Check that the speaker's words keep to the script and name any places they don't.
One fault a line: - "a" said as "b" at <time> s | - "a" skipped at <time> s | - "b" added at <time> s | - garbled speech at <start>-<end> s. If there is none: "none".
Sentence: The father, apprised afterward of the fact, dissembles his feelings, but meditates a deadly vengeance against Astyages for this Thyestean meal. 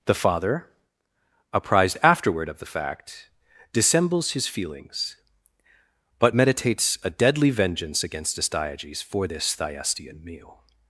none